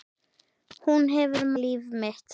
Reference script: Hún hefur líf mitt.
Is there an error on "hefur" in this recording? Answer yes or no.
no